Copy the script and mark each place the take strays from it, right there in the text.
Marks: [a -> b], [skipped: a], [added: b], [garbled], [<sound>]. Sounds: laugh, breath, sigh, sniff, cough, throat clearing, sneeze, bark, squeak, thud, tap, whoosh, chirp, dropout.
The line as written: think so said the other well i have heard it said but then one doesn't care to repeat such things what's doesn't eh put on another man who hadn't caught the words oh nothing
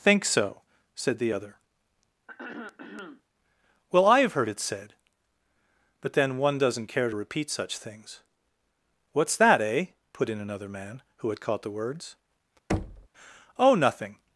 think so said the other [throat clearing] well i have heard it said but then one doesn't care to repeat such things what's [doesn't -> that] eh put [on -> in] another man who [hadn't -> had] caught the words [thud] oh nothing